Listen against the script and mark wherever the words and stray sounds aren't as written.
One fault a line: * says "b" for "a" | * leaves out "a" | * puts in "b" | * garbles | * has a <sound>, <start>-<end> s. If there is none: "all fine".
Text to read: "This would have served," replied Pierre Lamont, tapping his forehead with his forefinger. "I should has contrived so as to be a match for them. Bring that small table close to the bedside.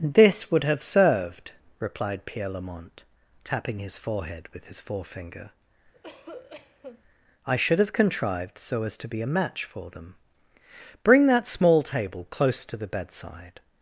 * has a cough, 5.9-7.0 s
* says "have" for "has"